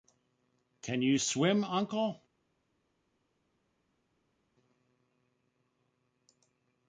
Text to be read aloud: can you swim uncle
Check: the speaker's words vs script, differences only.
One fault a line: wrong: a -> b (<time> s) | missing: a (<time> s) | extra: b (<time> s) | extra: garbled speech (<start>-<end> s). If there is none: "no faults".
no faults